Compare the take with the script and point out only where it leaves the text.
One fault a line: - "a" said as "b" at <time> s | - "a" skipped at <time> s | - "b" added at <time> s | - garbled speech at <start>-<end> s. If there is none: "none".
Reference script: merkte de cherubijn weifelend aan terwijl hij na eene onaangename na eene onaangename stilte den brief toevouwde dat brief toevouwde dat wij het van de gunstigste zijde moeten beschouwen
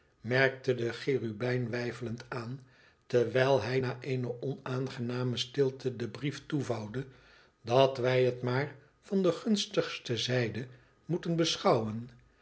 - "na eene onaangename" skipped at 5.4 s
- "brief toevouwde dat" skipped at 8.0 s
- "maar" added at 8.4 s